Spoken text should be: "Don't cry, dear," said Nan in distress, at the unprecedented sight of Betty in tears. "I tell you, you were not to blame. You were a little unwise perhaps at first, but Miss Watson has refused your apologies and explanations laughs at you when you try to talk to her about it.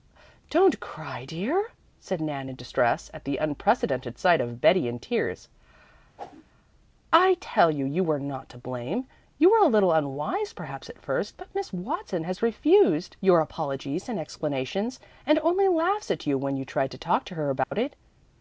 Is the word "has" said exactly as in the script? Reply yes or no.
yes